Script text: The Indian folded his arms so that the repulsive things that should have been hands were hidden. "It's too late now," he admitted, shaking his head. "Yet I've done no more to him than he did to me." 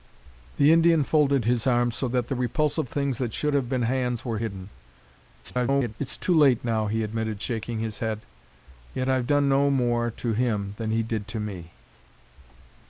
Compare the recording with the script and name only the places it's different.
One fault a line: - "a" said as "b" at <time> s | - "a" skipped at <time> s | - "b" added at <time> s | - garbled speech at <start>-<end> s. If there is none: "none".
- garbled speech at 5.4-5.9 s